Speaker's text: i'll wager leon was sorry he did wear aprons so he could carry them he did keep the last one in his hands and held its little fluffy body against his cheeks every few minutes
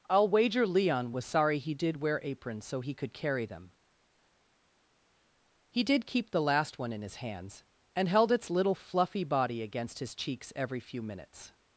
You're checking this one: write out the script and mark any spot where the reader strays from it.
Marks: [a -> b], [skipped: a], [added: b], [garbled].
i'll wager leon was sorry he did wear aprons so he could carry them he did keep the last one in his hands and held its little fluffy body against his cheeks every few minutes